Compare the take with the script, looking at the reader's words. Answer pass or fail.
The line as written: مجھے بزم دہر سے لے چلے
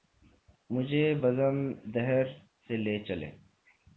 pass